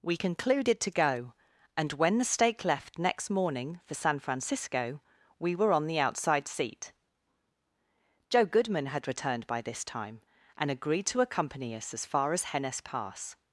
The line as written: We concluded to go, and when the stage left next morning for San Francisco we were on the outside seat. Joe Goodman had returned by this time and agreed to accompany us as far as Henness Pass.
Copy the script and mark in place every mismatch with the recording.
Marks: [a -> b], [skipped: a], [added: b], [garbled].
We concluded to go, and when the [stage -> stake] left next morning for San Francisco we were on the outside seat. Joe Goodman had returned by this time and agreed to accompany us as far as Henness Pass.